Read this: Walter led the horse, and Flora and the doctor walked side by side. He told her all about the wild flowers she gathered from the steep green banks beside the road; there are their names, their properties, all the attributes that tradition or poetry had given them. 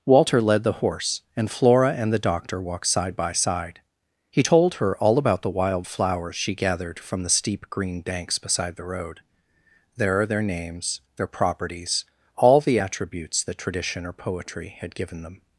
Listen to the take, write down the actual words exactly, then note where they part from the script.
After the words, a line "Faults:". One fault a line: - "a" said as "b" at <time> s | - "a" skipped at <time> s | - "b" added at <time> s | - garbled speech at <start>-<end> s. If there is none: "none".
Walter led the horse, and Flora and the doctor walked side by side. He told her all about the wild flowers she gathered from the steep green banks beside the road; there are their names, their properties, all the attributes that tradition or poetry had given them.
Faults:
none